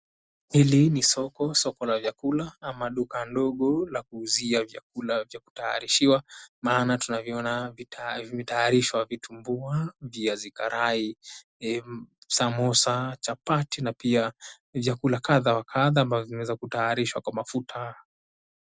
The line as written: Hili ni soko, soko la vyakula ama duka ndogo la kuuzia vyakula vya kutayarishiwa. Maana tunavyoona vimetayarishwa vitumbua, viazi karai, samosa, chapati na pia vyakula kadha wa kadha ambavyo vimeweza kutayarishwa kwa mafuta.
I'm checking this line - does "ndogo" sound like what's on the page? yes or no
yes